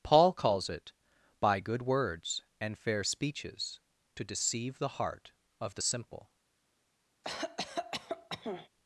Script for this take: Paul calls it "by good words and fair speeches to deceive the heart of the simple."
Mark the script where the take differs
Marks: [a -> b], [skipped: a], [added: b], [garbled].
Paul calls it "by good words and fair speeches to deceive the heart of the simple."